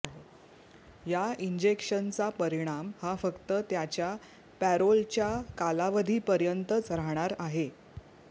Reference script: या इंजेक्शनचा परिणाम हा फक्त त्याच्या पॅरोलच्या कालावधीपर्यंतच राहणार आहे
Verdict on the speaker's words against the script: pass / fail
pass